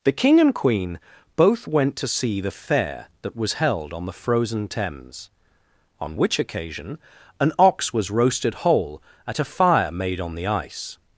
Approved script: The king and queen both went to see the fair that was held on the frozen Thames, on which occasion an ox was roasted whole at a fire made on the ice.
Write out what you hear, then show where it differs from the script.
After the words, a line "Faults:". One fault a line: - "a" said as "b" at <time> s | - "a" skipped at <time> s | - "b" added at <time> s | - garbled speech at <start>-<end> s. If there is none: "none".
The king and queen both went to see the fair that was held on the frozen Thames, on which occasion an ox was roasted whole at a fire made on the ice.
Faults:
none